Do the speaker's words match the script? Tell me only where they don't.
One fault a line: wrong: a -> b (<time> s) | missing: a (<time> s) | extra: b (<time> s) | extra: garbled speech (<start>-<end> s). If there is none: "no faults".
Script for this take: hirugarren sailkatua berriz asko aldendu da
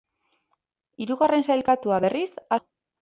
missing: asko aldendu (2.3 s)